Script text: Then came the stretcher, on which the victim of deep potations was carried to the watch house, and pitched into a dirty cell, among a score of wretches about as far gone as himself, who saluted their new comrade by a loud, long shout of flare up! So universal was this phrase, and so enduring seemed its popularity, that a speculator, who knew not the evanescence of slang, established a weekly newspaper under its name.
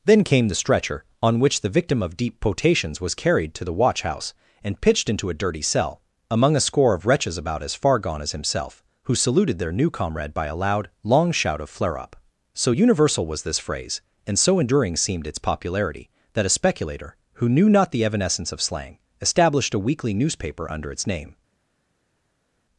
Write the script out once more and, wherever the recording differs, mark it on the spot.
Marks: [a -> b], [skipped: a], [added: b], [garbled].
Then came the stretcher, on which the victim of deep potations was carried to the watch house, and pitched into a dirty cell, among a score of wretches about as far gone as himself, who saluted their new comrade by a loud, long shout of flare up! So universal was this phrase, and so enduring seemed its popularity, that a speculator, who knew not the evanescence of slang, established a weekly newspaper under its name.